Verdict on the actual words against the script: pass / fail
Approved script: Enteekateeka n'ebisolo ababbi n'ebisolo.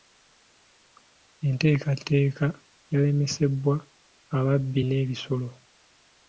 fail